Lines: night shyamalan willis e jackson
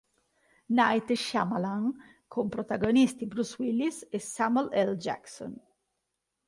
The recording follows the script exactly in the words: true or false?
false